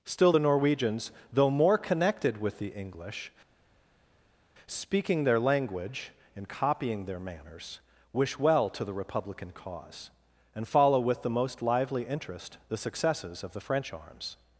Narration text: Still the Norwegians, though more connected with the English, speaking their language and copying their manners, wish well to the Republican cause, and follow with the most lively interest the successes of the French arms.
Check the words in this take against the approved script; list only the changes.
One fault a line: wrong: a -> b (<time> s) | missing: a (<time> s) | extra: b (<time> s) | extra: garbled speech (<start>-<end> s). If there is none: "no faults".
no faults